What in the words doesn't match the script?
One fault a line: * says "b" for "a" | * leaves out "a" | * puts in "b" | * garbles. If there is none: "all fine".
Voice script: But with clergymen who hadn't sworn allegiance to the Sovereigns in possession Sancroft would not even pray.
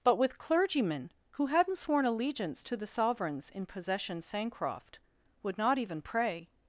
all fine